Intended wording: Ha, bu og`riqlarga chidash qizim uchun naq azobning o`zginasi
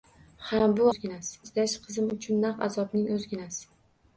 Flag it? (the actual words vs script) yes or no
yes